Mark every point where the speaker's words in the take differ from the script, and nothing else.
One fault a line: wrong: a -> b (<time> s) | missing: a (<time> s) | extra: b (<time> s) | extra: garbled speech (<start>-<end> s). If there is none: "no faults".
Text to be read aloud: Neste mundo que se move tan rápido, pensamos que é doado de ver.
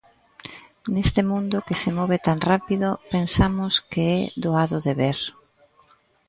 no faults